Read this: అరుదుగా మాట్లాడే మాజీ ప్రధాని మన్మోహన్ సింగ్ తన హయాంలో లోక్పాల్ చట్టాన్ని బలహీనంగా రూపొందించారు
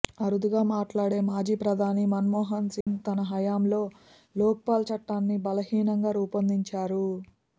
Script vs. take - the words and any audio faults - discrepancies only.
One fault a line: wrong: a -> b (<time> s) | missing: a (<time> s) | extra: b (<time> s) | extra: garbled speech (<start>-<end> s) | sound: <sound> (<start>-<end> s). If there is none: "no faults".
sound: dropout (2.8-2.9 s)